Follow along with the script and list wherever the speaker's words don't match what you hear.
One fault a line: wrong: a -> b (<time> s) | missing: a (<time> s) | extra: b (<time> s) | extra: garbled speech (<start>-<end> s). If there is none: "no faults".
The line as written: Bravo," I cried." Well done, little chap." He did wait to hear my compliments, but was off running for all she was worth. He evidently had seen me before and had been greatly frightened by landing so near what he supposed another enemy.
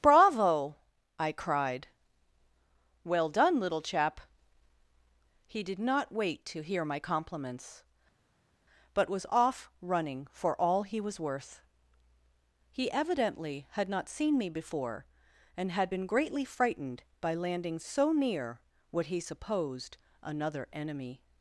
extra: not (5.8 s)
wrong: she -> he (10.8 s)
extra: not (13.9 s)